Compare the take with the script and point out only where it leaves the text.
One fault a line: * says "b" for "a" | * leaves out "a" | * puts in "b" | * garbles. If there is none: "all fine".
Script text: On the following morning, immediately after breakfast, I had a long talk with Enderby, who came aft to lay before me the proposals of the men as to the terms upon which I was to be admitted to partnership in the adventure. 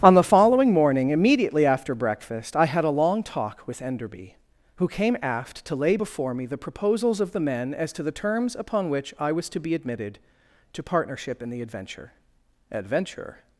* puts in "adventure"